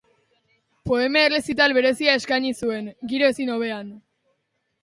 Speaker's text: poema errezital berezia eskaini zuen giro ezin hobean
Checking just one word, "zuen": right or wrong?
right